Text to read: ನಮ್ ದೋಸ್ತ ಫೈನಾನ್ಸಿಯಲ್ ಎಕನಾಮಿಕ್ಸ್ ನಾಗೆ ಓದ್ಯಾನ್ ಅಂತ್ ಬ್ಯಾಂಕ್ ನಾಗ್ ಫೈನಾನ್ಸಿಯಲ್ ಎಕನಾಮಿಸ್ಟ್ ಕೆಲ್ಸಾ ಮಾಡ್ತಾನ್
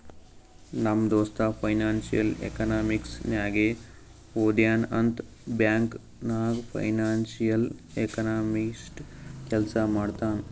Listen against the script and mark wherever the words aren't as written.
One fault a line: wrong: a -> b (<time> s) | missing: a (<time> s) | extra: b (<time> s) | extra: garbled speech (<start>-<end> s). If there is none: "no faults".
no faults